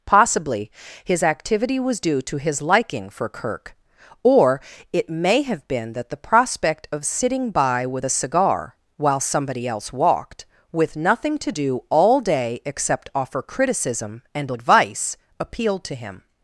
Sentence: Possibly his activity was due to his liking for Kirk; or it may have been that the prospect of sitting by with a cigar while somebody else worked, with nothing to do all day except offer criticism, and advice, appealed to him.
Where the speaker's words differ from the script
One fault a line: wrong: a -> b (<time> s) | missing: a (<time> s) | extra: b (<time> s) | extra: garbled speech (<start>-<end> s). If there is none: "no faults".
wrong: worked -> walked (9.9 s)